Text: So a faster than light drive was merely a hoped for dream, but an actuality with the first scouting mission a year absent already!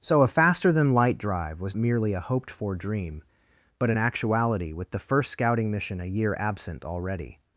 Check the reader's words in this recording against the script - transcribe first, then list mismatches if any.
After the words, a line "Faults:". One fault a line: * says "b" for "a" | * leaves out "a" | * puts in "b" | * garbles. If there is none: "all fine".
So a faster than light drive was merely a hoped for dream, but an actuality with the first scouting mission a year absent already!
Faults:
all fine